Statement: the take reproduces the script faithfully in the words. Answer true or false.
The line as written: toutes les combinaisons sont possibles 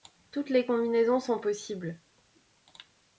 true